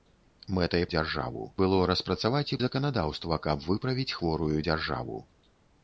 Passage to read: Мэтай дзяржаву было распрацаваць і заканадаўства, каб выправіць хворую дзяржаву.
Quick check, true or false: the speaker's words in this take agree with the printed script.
true